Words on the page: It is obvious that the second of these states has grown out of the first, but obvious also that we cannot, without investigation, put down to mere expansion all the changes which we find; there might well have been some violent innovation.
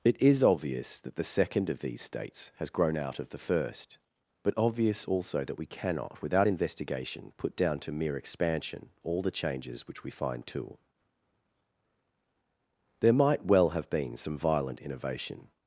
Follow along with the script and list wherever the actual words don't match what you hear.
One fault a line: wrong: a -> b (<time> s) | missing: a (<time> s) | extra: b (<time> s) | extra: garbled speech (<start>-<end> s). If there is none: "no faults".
extra: too (10.5 s)